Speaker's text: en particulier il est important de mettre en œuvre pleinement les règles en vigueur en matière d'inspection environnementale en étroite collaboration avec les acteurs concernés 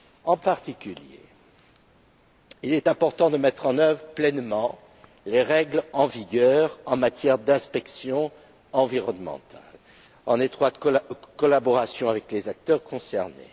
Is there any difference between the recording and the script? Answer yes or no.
no